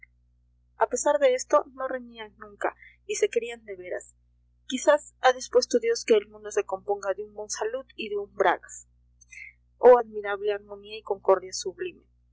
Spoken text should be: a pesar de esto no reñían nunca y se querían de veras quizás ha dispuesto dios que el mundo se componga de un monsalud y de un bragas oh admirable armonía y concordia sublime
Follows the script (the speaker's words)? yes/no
yes